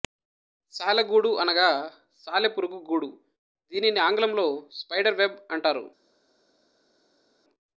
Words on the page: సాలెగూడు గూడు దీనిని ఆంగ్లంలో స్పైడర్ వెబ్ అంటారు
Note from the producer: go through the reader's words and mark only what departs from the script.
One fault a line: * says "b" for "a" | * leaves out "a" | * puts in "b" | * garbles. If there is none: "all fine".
* puts in "అనగా సాలెపురుగు"